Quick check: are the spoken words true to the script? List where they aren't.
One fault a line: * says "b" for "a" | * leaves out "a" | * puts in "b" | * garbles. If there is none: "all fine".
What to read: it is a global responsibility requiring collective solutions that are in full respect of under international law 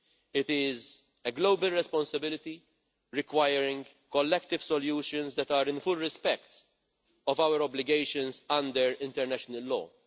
* puts in "our obligations"